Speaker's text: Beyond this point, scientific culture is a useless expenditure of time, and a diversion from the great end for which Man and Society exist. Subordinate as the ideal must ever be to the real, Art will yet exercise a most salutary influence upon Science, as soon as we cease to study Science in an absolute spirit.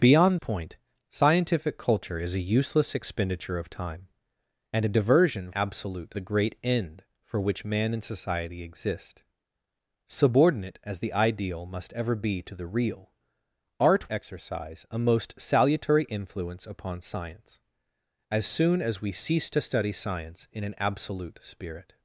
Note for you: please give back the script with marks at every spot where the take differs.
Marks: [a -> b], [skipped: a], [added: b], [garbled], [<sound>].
Beyond [skipped: this] point, scientific culture is a useless expenditure of time, and a diversion [from -> absolute] the great end for which Man and Society exist. Subordinate as the ideal must ever be to the real, Art [skipped: will yet] exercise a most salutary influence upon Science, as soon as we cease to study Science in an absolute spirit.